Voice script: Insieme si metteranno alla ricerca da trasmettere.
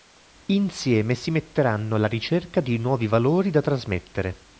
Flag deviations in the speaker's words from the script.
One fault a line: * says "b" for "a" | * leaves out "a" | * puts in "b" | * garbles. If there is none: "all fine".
* puts in "di nuovi valori"